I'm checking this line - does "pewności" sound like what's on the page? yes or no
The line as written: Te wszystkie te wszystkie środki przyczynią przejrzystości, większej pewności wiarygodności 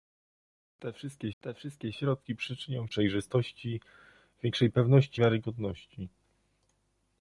yes